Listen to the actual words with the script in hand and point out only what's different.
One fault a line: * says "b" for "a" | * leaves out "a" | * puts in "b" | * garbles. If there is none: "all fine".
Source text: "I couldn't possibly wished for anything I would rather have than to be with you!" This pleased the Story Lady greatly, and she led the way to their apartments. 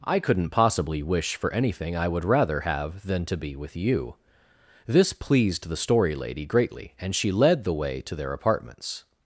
* says "wish" for "wished"